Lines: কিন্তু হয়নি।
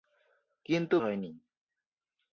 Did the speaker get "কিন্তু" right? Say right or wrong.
right